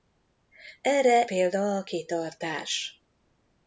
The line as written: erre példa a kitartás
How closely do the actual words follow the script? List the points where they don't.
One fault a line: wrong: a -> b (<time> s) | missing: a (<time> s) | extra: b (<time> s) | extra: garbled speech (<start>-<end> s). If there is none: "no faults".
no faults